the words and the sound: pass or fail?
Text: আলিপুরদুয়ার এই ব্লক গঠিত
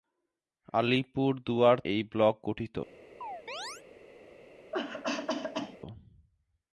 fail